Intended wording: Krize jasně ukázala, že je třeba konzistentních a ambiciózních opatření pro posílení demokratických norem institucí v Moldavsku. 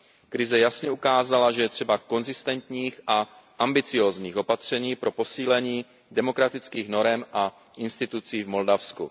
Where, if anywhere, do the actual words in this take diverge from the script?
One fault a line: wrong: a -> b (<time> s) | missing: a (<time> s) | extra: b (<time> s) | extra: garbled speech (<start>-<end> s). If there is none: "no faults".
extra: a (7.3 s)